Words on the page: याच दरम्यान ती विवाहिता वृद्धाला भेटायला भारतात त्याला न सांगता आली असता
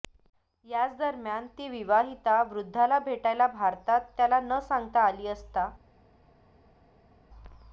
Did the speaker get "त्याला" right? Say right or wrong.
right